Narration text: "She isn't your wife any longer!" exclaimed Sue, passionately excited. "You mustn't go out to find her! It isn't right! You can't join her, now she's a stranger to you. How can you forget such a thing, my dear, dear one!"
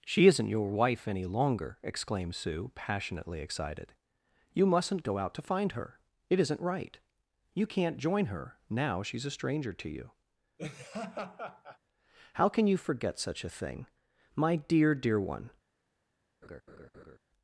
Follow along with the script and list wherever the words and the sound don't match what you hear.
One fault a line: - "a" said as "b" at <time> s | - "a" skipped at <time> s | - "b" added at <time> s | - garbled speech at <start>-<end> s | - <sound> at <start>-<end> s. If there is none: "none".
- laugh at 10.6-11.8 s
- laugh at 16.4-17.2 s